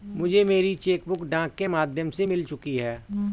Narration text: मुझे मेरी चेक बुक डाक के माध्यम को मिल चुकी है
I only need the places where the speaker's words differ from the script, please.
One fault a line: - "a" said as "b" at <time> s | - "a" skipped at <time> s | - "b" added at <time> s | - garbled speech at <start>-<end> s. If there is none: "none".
- "को" said as "से" at 2.1 s